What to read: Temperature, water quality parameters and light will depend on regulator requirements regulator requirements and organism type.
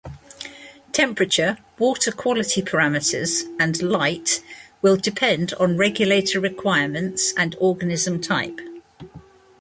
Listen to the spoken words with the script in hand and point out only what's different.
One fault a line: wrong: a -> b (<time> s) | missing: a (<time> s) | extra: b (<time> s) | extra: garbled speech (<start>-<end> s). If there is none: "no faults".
missing: regulator requirements (7.3 s)